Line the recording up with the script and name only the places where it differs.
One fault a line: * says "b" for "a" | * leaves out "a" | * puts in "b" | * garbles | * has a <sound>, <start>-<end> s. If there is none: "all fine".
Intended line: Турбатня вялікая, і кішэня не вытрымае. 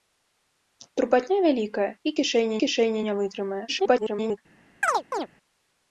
* puts in "кішэня"
* garbles
* has a chirp, 4.8-5.3 s